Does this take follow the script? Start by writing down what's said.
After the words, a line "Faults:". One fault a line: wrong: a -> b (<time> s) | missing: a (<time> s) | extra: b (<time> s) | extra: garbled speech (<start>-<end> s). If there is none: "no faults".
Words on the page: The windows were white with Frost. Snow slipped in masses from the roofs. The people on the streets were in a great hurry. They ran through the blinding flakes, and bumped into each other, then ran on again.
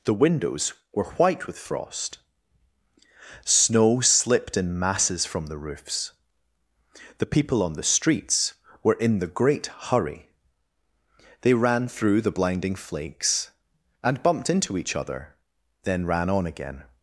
The windows were white with Frost. Snow slipped in masses from the roofs. The people on the streets were in the great hurry. They ran through the blinding flakes, and bumped into each other, then ran on again.
Faults:
wrong: a -> the (9.2 s)